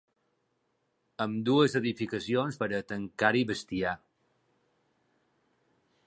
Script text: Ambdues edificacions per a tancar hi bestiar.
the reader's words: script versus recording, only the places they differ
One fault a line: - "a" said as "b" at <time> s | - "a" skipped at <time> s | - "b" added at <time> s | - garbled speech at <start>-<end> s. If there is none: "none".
none